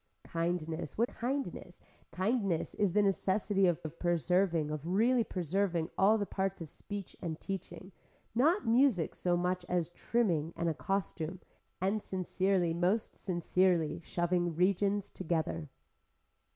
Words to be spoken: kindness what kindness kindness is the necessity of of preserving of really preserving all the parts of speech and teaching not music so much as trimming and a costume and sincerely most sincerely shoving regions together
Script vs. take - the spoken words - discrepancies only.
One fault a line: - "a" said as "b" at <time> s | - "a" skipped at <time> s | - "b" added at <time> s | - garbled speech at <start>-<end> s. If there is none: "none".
none